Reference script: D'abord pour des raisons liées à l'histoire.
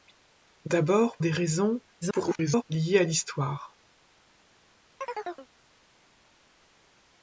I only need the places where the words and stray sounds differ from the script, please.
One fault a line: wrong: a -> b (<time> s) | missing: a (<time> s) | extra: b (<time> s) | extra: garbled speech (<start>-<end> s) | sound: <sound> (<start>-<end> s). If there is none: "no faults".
missing: pour (1.2 s)
extra: garbled speech (2.0-2.6 s)
sound: chirp (5.0-5.5 s)